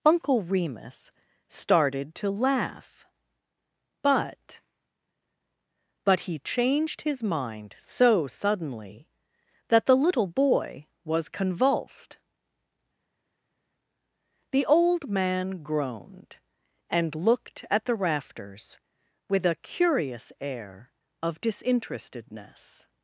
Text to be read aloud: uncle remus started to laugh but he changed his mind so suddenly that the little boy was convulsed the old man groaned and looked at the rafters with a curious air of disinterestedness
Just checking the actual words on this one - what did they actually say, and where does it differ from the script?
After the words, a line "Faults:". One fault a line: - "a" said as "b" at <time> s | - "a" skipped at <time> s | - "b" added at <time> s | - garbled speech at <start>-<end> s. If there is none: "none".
uncle remus started to laugh but but he changed his mind so suddenly that the little boy was convulsed the old man groaned and looked at the rafters with a curious air of disinterestedness
Faults:
- "but" added at 6.0 s